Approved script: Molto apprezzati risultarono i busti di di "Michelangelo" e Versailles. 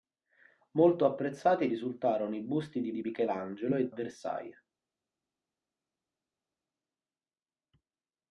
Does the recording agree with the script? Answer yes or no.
yes